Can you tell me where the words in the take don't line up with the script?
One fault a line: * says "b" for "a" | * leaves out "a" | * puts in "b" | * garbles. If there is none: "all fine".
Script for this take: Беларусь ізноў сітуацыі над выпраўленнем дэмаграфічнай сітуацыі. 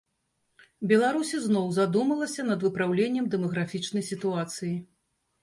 * says "задумалася" for "сітуацыі"